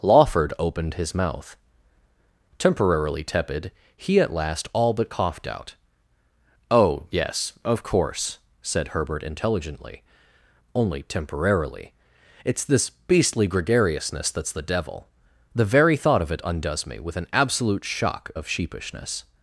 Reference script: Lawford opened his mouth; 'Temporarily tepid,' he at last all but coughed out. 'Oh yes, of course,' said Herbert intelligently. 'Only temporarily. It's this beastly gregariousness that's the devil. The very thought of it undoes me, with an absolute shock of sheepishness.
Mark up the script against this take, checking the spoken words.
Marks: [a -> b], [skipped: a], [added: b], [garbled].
Lawford opened his mouth; 'Temporarily tepid,' he at last all but coughed out. 'Oh yes, of course,' said Herbert intelligently. 'Only temporarily. It's this beastly gregariousness that's the devil. The very thought of it undoes me, with an absolute shock of sheepishness.